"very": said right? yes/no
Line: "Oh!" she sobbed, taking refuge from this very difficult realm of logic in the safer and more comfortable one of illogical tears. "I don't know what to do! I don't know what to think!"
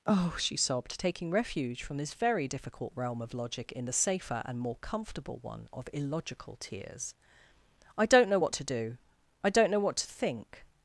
yes